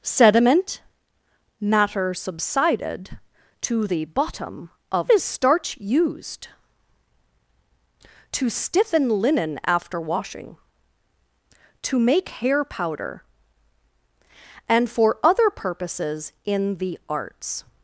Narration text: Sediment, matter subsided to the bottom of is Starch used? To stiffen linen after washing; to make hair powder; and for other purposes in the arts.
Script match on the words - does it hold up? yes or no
yes